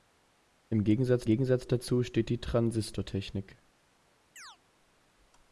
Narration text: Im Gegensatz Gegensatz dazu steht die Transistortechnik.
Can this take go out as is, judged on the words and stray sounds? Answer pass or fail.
fail